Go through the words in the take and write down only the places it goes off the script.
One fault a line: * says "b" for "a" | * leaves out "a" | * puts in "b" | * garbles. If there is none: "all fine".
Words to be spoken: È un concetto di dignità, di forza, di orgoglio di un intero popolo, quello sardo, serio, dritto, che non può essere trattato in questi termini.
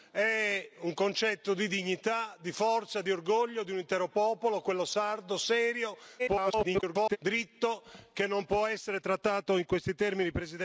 * garbles